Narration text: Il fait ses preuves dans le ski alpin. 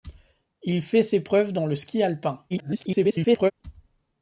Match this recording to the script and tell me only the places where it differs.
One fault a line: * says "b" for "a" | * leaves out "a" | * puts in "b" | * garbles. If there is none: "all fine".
* garbles